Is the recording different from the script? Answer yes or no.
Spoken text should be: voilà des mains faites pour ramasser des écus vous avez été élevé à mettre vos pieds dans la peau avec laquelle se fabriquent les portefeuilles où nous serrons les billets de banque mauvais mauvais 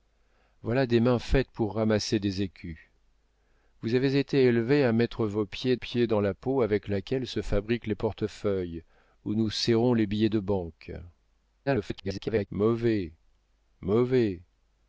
yes